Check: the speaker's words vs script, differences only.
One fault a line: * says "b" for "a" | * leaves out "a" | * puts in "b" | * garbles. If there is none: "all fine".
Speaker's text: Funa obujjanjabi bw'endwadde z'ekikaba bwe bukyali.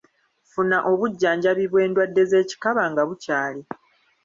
* says "nga" for "bwe"